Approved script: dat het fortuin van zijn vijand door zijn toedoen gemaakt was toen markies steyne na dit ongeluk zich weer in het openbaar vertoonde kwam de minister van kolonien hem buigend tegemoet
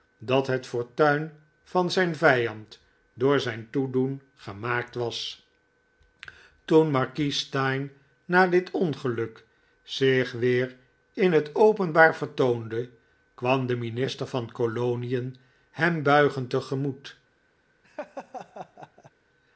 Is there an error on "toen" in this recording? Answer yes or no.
no